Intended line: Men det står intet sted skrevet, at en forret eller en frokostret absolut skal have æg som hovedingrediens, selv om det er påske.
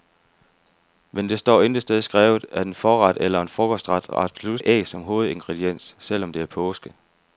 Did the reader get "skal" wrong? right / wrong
wrong